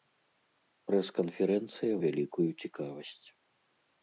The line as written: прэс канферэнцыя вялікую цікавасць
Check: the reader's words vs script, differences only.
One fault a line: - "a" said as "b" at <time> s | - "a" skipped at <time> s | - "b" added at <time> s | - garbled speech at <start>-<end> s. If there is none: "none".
none